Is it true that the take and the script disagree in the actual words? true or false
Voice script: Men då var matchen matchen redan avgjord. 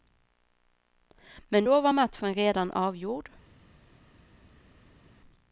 true